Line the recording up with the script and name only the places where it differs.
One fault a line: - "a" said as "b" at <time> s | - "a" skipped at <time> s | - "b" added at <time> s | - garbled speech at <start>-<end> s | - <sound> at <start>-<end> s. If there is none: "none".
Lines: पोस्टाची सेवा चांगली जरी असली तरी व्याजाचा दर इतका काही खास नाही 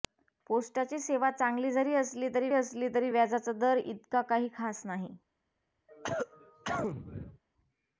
- "असली तरी" added at 2.5 s
- cough at 5.9-7.4 s